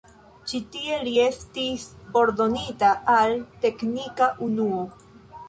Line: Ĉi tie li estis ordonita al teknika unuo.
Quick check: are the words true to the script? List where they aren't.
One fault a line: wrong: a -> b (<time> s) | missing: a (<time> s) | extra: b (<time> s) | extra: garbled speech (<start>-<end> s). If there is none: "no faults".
no faults